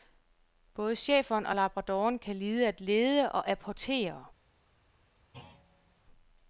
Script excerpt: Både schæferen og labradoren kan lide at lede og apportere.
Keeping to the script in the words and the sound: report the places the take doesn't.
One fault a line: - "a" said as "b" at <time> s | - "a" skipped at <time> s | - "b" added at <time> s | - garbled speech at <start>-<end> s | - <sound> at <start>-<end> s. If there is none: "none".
- thud at 5.3-6.0 s